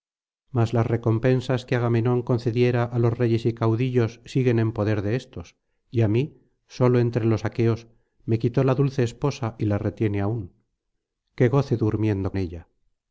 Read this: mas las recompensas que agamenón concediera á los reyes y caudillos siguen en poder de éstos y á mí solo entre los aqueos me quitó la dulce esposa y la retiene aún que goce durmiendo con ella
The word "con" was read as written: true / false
false